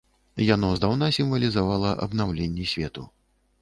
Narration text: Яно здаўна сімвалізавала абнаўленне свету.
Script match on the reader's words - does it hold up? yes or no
yes